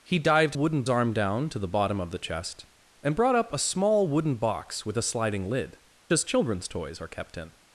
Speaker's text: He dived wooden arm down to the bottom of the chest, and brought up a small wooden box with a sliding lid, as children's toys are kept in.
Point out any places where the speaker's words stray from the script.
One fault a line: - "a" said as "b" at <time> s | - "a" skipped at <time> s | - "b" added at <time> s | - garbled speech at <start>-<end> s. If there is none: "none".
none